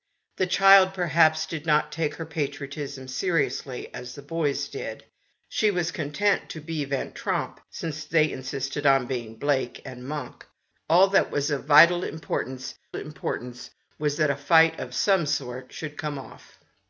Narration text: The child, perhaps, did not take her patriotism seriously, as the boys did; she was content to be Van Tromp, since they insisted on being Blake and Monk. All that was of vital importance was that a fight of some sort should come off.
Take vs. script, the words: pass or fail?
fail